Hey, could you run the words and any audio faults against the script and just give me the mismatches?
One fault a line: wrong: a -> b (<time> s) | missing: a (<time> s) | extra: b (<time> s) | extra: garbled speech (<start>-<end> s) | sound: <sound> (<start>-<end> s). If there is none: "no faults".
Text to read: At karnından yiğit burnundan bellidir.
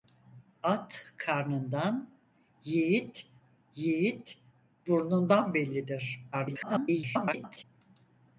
extra: yiğit (3.7 s)
extra: garbled speech (6.3-7.6 s)